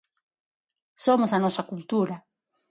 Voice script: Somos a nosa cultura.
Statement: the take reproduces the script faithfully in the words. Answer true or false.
true